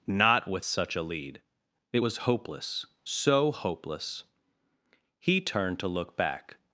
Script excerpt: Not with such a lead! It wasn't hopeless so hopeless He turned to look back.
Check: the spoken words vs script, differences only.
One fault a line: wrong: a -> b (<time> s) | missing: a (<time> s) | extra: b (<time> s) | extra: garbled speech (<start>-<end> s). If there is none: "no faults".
wrong: wasn't -> was (2.0 s)